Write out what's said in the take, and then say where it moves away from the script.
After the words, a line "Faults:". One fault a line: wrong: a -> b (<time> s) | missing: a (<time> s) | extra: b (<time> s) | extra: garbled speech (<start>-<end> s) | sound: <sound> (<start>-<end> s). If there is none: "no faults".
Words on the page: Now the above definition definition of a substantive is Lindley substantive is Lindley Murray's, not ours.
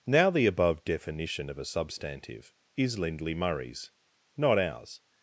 Now the above definition of a substantive is Lindley Murray's, not ours.
Faults:
missing: definition (1.5 s)
missing: substantive is Lindley (3.4 s)